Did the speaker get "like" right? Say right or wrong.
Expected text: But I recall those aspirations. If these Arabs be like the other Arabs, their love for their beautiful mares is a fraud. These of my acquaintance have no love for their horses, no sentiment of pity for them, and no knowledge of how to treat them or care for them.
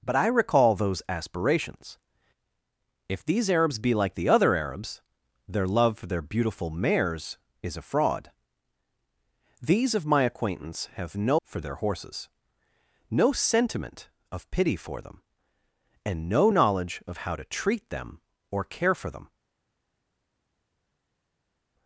right